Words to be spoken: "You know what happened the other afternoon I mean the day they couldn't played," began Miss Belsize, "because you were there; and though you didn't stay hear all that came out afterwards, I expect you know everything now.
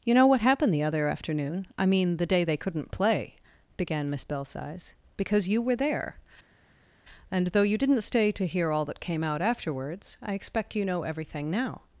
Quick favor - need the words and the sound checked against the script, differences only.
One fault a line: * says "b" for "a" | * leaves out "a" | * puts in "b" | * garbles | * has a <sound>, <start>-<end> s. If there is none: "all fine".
* says "play" for "played"
* puts in "to"